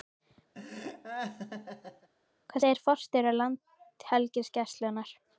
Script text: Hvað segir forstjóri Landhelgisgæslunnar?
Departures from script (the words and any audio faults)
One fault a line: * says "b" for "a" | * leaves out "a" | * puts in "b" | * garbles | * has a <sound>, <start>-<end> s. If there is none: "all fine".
* has a laugh, 0.5-2.1 s